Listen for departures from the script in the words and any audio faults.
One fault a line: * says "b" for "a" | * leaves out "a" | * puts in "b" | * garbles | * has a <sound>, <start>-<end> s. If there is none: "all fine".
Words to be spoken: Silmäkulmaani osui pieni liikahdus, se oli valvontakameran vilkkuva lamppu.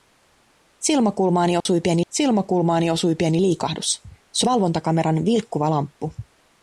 * has a dropout, 1.6-1.7 s
* puts in "silmäkulmaani osui pieni"
* leaves out "oli"